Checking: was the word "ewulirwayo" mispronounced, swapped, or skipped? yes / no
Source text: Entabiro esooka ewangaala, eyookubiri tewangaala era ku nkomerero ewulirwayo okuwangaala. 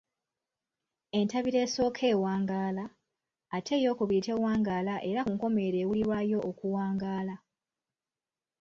no